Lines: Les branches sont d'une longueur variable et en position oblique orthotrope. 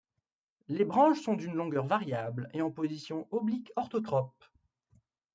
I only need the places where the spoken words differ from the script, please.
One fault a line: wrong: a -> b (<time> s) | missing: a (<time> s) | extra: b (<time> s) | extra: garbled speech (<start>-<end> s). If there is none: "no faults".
no faults